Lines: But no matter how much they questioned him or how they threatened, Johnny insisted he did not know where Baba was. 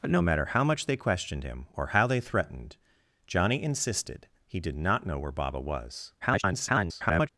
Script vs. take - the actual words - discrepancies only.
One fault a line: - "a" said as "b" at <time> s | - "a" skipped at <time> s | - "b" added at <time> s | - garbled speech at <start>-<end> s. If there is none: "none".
- garbled speech at 6.2-7.3 s